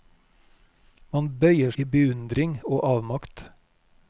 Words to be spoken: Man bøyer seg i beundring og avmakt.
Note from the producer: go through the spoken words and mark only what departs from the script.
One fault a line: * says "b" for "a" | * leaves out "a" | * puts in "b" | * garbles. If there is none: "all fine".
* leaves out "seg"